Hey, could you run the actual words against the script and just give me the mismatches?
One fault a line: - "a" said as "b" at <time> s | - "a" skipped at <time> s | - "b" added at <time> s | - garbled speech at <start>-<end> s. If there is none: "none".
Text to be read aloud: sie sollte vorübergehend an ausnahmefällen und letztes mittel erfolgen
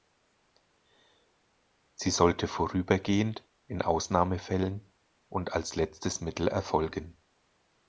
- "an" said as "in" at 3.7 s
- "als" added at 5.5 s